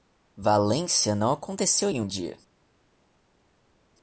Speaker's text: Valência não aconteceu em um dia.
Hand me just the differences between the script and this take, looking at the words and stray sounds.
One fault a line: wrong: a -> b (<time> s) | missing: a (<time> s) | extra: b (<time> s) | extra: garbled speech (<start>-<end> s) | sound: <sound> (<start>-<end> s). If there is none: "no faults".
no faults